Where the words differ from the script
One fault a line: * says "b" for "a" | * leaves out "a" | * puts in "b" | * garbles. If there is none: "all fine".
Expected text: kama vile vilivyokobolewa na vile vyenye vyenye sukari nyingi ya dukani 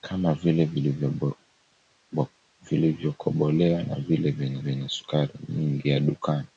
all fine